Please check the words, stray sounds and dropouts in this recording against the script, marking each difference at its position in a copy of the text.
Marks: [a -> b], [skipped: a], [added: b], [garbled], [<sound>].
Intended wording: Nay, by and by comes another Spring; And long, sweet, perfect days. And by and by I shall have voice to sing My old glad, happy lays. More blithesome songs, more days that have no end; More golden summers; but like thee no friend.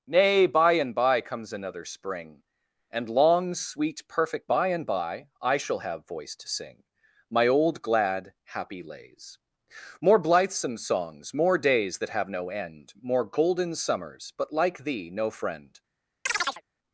Nay, by and by comes another Spring; And long, sweet, perfect [skipped: days. And] by and by I shall have voice to sing My old glad, happy lays. More blithesome songs, more days that have no end; More golden summers; but like thee no friend. [chirp]